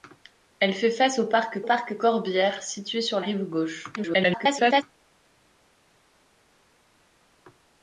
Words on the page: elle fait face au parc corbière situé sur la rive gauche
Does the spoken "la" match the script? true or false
false